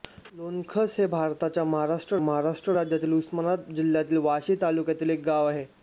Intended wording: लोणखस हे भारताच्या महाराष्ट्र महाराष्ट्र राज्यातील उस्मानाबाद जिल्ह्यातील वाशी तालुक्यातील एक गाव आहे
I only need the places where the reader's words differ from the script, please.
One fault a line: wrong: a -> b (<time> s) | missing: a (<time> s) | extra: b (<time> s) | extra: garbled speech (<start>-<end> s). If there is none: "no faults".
no faults